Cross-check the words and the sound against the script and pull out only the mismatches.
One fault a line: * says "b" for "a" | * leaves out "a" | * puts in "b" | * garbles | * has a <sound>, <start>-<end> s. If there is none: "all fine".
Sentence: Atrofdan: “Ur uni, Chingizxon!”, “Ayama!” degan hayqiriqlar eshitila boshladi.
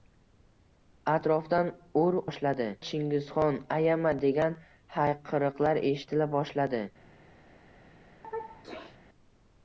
* says "boshladi" for "uni"
* has a sneeze, 8.2-9.0 s